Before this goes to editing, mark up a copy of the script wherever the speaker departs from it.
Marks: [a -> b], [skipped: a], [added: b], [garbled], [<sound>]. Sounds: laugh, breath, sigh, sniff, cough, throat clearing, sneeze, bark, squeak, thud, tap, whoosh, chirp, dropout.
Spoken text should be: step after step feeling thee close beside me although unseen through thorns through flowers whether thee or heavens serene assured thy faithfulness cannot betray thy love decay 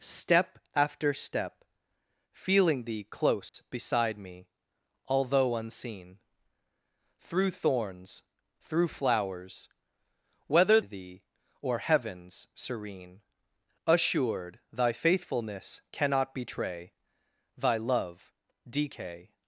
step after step feeling thee close [dropout] beside me although unseen through thorns through flowers whether thee or heavens serene assured thy faithfulness cannot betray thy love decay